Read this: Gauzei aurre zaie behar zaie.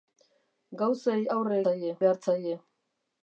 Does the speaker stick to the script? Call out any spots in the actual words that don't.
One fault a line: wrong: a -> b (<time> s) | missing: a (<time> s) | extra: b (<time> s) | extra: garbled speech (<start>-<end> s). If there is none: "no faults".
no faults